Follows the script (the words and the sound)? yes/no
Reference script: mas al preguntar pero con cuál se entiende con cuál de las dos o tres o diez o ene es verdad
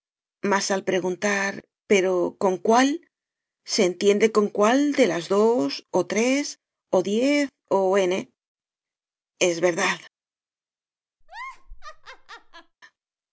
no